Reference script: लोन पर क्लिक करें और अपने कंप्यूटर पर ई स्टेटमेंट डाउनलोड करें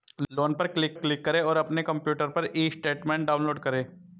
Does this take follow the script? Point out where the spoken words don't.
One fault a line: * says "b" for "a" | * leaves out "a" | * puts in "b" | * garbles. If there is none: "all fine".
* puts in "क्लिक"